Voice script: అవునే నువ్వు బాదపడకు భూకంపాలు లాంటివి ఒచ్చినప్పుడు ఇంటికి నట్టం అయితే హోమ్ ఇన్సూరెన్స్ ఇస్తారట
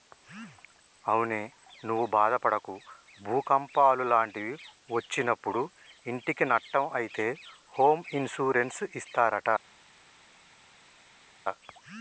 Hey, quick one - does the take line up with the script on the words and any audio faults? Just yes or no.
yes